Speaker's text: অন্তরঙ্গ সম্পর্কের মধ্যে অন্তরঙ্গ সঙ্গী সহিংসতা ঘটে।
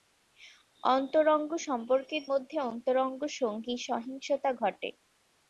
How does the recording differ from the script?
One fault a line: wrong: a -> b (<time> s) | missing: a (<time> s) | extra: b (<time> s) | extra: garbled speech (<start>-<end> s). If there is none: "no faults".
no faults